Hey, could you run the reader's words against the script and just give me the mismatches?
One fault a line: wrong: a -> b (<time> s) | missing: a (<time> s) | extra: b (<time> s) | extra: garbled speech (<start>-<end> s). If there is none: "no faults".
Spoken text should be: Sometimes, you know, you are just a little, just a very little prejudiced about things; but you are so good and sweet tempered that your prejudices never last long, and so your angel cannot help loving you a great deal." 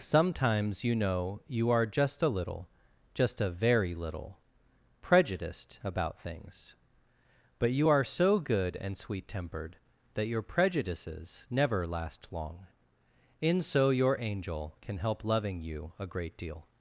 wrong: and -> in (13.4 s)
wrong: cannot -> can (14.8 s)